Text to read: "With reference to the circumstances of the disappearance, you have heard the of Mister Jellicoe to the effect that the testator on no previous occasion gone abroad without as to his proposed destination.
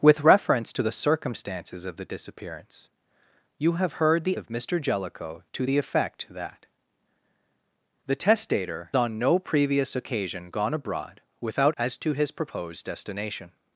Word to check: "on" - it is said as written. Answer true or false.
true